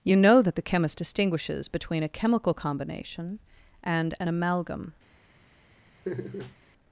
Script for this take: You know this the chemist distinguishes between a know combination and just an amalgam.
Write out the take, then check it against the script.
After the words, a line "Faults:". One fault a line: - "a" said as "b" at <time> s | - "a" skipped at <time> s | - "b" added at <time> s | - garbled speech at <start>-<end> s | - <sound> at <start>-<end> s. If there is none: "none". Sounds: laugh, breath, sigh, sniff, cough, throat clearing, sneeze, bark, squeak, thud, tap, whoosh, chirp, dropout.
You know that the chemist distinguishes between a chemical combination and an amalgam.
Faults:
- "this" said as "that" at 0.4 s
- "know" said as "chemical" at 2.1 s
- "just" skipped at 4.2 s
- laugh at 6.0-6.6 s